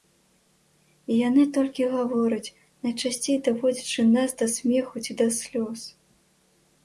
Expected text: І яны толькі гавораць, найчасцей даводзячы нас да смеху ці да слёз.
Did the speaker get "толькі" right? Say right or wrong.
right